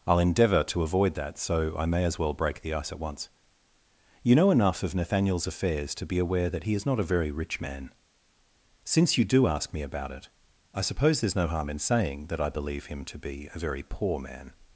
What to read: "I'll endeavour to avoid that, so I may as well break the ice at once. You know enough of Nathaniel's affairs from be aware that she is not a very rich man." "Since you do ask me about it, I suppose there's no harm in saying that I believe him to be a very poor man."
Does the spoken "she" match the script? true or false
false